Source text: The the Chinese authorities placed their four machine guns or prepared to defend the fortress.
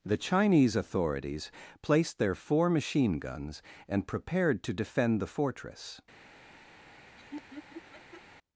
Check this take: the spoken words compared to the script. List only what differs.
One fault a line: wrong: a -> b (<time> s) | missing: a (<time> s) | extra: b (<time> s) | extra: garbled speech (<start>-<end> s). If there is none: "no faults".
missing: the (0.2 s)
wrong: or -> and (3.9 s)